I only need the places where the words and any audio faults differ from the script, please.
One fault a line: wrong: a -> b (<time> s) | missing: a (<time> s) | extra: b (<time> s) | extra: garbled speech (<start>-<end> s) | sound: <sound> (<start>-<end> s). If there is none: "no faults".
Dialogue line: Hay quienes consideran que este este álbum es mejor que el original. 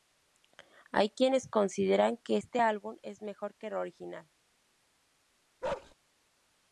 missing: este (2.6 s)
sound: bark (5.6-5.9 s)